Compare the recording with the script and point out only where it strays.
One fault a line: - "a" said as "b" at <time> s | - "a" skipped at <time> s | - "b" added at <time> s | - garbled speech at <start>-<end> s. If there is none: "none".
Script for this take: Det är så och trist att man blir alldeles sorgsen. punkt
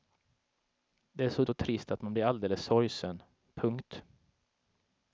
none